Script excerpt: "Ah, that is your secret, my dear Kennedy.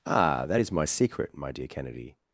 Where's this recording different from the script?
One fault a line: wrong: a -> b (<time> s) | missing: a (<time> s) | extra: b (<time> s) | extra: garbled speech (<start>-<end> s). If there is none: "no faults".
wrong: your -> my (0.7 s)